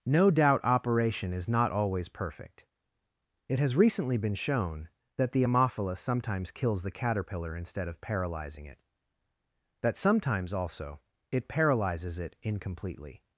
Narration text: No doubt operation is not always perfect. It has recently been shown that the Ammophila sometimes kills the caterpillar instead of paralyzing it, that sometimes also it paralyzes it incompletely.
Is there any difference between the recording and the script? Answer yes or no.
no